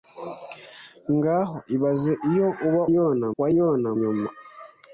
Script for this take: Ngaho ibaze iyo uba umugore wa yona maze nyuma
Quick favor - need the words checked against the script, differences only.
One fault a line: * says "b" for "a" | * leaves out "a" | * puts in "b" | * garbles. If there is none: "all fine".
* says "yona" for "umugore"
* leaves out "maze"